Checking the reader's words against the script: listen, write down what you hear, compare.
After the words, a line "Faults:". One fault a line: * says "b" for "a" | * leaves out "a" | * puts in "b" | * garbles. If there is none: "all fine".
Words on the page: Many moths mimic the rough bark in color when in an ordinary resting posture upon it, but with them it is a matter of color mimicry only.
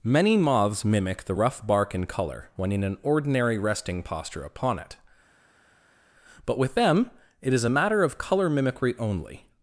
Many moths mimic the rough bark in color when in an ordinary resting posture upon it, but with them it is a matter of color mimicry only.
Faults:
all fine